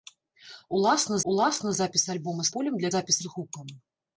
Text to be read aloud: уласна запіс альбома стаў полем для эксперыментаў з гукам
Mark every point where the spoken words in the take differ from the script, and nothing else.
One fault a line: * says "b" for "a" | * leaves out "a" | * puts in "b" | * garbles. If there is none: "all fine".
* puts in "уласна"
* leaves out "стаў"
* says "запіс" for "эксперыментаў"